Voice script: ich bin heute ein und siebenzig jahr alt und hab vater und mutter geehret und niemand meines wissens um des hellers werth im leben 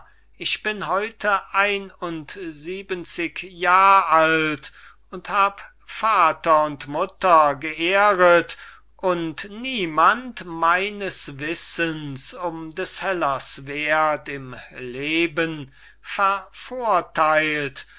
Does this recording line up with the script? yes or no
yes